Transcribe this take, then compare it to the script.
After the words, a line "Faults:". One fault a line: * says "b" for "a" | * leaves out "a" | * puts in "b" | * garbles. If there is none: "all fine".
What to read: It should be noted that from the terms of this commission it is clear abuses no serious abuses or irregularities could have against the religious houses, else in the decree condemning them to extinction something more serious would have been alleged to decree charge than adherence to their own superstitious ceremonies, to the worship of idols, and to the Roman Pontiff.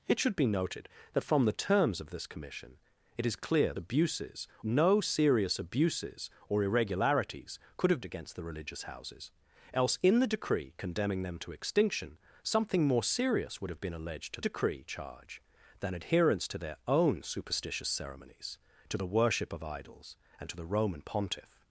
It should be noted that from the terms of this commission it is clear abuses no serious abuses or irregularities could have against the religious houses, else in the decree condemning them to extinction something more serious would have been alleged to decree charge than adherence to their own superstitious ceremonies, to the worship of idols, and to the Roman Pontiff.
Faults:
all fine